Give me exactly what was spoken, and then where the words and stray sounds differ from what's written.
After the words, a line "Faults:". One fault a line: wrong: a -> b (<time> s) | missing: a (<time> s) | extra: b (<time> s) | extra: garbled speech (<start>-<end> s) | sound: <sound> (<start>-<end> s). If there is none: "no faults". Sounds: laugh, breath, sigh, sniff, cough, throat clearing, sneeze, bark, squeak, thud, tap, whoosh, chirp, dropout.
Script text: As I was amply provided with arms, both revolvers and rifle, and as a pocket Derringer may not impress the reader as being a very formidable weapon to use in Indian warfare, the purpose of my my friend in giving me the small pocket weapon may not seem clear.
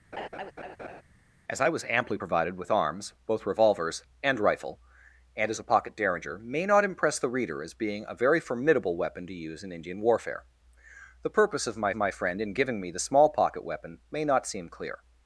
As I was amply provided with arms, both revolvers and rifle, and as a pocket Derringer may not impress the reader as being a very formidable weapon to use in Indian warfare, the purpose of my my friend in giving me the small pocket weapon may not seem clear.
Faults:
sound: laugh (0.1-1.0 s)